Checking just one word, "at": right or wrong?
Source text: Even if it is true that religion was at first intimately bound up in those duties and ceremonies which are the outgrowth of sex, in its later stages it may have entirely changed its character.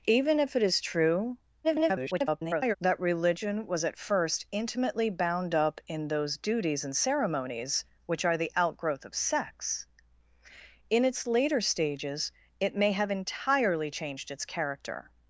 right